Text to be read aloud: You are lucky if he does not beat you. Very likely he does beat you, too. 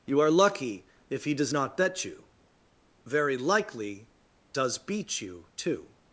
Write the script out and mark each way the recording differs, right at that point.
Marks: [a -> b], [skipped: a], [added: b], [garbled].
You are lucky if he does not [beat -> bet] you. Very likely [skipped: he] does beat you, too.